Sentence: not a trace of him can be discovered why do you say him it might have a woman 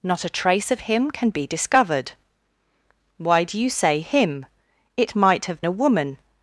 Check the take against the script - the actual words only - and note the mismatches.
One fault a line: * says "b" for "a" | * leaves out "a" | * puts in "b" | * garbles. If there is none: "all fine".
all fine